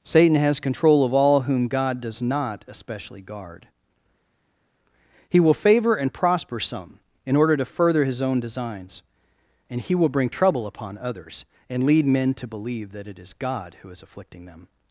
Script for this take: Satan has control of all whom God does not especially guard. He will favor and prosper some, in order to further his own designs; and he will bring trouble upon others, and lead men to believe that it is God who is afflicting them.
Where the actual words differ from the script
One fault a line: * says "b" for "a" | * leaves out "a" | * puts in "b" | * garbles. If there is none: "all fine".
all fine